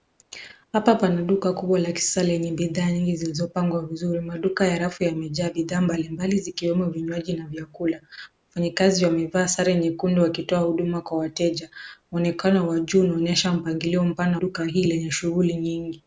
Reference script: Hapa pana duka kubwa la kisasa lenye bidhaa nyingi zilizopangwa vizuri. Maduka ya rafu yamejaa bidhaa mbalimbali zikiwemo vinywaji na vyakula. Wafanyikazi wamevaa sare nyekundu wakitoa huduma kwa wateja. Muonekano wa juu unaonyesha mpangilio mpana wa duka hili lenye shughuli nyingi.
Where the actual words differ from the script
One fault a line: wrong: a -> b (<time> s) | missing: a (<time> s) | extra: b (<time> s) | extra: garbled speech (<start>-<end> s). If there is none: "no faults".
missing: wa (14.4 s)